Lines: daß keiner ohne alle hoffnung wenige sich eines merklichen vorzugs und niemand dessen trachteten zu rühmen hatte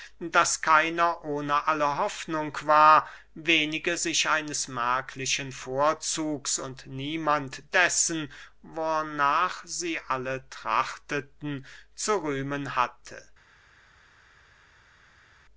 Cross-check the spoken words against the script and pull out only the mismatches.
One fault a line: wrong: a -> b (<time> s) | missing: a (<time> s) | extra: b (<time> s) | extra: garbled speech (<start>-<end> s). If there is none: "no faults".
extra: war (2.6 s)
extra: wornach sie alle (8.6 s)